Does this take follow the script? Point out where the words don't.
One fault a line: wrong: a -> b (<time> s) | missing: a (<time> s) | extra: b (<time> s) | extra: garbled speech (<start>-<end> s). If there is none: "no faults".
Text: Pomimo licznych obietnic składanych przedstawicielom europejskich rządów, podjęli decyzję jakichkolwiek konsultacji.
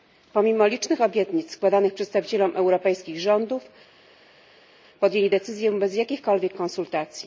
extra: bez (5.7 s)